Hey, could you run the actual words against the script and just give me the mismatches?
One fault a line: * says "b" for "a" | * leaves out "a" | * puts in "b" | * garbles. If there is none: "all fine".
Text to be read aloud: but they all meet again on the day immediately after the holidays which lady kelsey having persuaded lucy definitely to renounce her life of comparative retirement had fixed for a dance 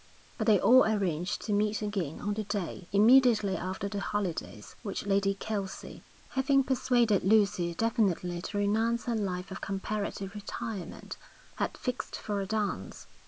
* puts in "arranged to"